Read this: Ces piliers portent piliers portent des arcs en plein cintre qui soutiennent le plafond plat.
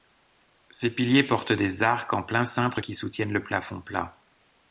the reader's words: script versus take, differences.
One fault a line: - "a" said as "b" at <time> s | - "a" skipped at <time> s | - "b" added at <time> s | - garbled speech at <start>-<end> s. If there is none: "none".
- "piliers portent" skipped at 1.5 s